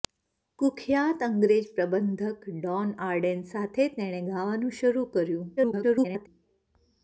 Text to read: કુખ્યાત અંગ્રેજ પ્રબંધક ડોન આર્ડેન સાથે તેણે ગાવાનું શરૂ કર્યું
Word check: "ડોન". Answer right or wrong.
right